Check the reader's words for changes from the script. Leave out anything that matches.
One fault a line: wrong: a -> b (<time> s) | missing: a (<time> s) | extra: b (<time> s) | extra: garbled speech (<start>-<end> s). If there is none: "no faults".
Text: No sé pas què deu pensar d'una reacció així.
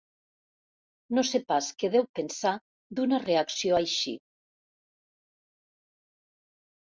no faults